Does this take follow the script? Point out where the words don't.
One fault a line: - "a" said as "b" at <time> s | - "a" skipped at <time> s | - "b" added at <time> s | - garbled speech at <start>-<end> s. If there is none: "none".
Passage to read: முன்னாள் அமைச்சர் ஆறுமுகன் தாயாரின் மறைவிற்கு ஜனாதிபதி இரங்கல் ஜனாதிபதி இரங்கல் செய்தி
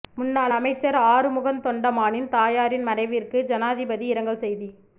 - "தொண்டமானின்" added at 1.6 s
- "ஜனாதிபதி இரங்கல்" skipped at 4.4 s